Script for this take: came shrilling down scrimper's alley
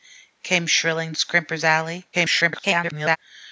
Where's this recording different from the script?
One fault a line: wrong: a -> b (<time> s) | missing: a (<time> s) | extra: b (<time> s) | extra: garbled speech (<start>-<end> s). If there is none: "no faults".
missing: down (1.1 s)
extra: garbled speech (2.1-3.2 s)